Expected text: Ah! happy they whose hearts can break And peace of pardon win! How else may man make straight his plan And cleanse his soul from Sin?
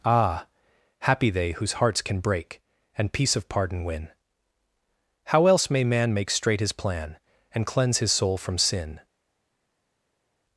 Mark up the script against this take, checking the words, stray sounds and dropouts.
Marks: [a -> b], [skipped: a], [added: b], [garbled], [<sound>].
Ah! happy they whose hearts can break And peace of pardon win! How else may man make straight his plan And cleanse his soul from Sin?